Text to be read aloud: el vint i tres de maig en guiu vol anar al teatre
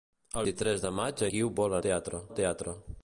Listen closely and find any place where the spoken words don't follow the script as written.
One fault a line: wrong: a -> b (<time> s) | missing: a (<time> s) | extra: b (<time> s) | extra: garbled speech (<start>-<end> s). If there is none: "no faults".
missing: vint (0.5 s)
missing: en (1.2 s)
wrong: anar -> teatre (1.8 s)